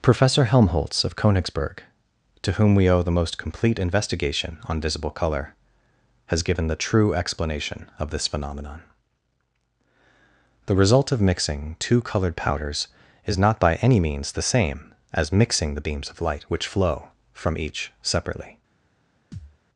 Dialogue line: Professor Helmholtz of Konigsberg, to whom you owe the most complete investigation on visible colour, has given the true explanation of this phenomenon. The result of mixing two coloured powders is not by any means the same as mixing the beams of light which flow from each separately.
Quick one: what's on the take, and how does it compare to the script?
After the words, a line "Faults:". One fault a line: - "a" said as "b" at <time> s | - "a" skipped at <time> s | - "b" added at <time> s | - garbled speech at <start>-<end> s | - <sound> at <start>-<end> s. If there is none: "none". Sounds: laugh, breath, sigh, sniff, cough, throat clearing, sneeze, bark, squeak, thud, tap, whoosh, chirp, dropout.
Professor Helmholtz of Konigsberg, to whom we owe the most complete investigation on visible colour, has given the true explanation of this phenomenon. The result of mixing two coloured powders is not by any means the same as mixing the beams of light which flow from each separately.
Faults:
- "you" said as "we" at 2.7 s
- thud at 19.3-19.6 s